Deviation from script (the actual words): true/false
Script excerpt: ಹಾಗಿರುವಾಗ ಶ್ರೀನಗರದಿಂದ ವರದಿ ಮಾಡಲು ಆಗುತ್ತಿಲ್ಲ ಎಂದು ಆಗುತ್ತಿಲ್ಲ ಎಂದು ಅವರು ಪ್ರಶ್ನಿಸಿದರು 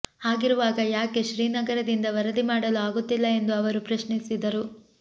true